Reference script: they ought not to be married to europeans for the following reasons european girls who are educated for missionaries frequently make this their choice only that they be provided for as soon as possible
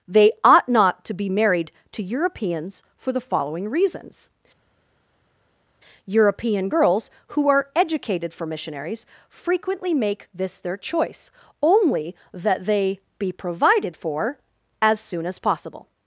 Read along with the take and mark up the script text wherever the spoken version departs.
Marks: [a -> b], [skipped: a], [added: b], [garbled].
they ought not to be married to europeans for the following reasons european girls who are educated for missionaries frequently make this their choice only that they be provided for as soon as possible